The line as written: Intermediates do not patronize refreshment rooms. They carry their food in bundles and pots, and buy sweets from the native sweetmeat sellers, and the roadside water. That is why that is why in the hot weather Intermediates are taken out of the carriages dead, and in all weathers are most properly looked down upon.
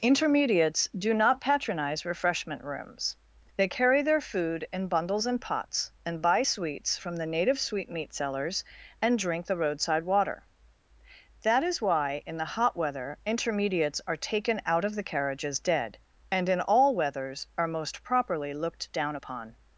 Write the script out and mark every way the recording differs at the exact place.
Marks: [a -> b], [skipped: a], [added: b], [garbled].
Intermediates do not patronize refreshment rooms. They carry their food in bundles and pots, and buy sweets from the native sweetmeat sellers, and [added: drink] the roadside water. That is why [skipped: that is why] in the hot weather Intermediates are taken out of the carriages dead, and in all weathers are most properly looked down upon.